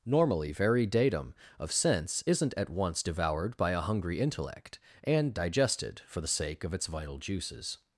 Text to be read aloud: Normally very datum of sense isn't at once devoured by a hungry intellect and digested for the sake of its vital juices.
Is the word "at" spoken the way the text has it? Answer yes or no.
yes